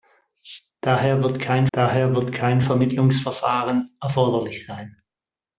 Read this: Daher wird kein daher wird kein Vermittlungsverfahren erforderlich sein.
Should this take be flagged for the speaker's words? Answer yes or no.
no